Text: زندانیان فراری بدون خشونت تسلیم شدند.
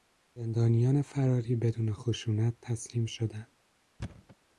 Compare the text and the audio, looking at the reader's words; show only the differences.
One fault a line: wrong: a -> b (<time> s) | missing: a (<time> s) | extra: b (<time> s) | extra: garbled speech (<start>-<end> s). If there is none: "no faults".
no faults